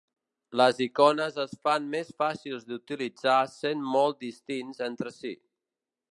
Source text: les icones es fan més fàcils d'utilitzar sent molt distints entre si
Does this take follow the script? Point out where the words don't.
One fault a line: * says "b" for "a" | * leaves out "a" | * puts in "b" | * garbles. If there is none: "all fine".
all fine